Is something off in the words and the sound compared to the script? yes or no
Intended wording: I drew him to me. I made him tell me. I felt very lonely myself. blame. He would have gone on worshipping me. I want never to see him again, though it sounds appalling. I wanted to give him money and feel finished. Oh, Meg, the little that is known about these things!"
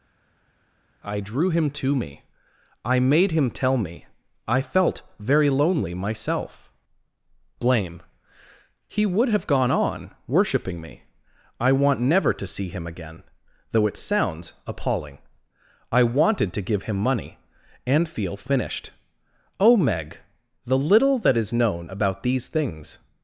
no